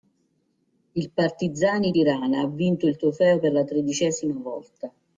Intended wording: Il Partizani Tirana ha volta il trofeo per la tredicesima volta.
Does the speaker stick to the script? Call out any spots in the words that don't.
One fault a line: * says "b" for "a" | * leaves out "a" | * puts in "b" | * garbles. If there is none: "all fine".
* says "vinto" for "volta"